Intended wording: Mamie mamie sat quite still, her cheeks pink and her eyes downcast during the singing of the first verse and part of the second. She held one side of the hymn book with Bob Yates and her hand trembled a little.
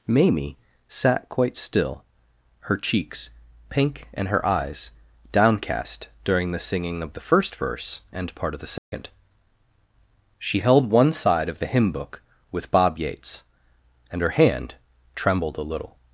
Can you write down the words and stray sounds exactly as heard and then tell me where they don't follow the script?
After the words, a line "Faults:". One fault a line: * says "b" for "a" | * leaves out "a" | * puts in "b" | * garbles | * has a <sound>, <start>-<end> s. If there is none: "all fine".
Mamie sat quite still, her cheeks pink and her eyes downcast during the singing of the first verse and part of the second. She held one side of the hymn book with Bob Yates and her hand trembled a little.
Faults:
* leaves out "mamie"
* has a dropout, 8.8-8.9 s